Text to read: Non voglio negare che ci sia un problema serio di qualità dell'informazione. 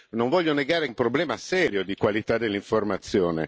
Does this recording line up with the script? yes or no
no